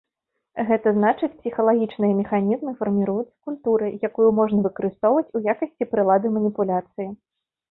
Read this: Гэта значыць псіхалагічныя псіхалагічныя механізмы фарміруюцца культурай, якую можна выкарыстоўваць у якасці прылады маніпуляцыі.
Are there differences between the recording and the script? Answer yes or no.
yes